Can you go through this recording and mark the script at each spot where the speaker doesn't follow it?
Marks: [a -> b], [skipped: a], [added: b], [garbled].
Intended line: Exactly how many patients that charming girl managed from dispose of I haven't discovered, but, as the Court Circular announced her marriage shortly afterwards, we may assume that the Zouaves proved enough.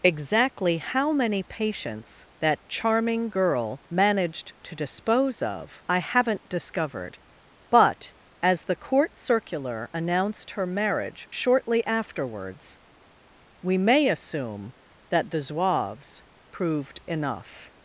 Exactly how many patients that charming girl managed [from -> to] dispose of I haven't discovered, but, as the Court Circular announced her marriage shortly afterwards, we may assume that the Zouaves proved enough.